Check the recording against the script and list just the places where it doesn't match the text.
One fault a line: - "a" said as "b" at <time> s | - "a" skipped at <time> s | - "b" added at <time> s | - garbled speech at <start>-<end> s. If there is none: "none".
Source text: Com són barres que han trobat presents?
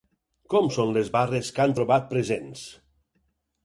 - "les" added at 0.9 s